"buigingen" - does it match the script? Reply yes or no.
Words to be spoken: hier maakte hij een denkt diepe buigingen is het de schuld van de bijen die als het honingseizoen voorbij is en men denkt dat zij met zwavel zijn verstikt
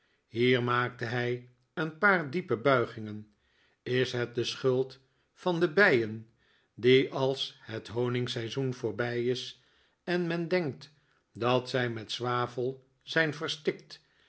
yes